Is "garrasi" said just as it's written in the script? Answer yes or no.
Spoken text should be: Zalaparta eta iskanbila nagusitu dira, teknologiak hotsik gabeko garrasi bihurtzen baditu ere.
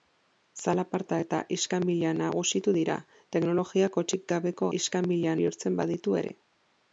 no